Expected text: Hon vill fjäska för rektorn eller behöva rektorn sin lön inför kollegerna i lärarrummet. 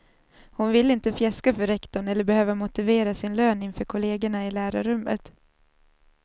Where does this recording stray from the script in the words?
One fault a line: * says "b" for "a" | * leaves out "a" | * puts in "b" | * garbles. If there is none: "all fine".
* puts in "inte"
* says "motivera" for "rektorn"